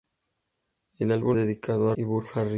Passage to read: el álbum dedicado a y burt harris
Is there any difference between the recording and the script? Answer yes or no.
no